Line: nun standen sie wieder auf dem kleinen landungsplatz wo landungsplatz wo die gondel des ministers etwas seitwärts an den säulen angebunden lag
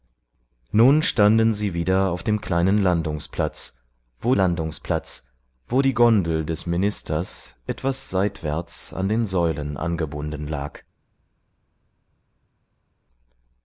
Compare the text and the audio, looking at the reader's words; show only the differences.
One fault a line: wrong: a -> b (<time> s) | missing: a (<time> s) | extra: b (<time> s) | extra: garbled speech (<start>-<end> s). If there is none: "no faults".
no faults